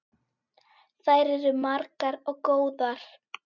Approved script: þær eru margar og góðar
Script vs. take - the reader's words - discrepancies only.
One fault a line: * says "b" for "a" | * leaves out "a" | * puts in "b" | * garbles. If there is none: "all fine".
all fine